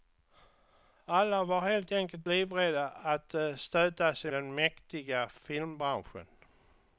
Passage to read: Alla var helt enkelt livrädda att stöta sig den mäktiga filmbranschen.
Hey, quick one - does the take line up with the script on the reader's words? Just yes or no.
yes